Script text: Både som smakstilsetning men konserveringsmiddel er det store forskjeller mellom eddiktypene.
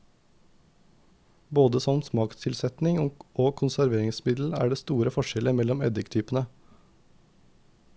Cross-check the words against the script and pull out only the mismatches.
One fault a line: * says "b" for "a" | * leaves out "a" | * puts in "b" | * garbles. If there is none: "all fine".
* says "og" for "men"